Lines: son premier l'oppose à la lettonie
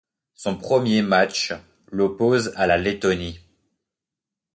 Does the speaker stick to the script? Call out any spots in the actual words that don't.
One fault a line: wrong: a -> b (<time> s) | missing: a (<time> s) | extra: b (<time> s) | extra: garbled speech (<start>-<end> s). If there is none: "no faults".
extra: match (1.0 s)